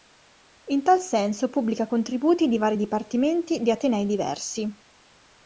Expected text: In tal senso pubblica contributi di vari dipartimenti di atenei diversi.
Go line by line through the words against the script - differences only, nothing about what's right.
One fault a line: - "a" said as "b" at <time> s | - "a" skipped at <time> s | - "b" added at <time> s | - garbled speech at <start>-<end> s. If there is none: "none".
none